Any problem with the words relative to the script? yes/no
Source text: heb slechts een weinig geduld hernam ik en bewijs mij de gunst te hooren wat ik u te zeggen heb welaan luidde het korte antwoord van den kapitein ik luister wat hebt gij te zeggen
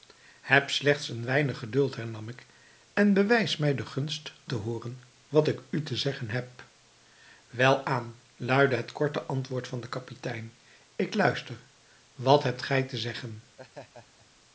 no